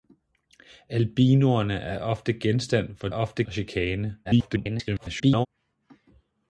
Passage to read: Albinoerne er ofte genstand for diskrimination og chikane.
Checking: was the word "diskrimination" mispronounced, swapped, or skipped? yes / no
yes